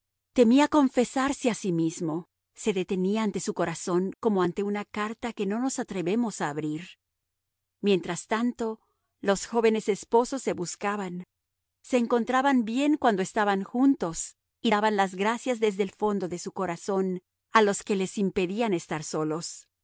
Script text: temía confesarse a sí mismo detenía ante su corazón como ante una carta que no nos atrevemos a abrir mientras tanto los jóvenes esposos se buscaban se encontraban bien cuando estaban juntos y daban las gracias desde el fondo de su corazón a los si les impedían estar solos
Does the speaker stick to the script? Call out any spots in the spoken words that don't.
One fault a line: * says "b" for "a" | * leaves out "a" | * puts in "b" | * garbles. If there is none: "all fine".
* puts in "se"
* says "que" for "si"